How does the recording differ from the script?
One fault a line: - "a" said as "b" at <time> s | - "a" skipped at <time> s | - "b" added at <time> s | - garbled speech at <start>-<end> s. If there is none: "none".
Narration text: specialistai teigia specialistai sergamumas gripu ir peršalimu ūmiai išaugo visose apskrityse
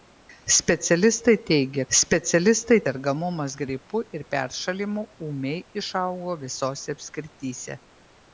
none